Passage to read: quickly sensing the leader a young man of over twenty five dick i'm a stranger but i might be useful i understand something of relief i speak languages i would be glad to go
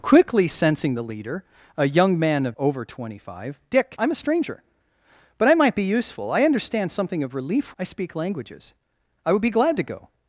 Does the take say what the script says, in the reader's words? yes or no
yes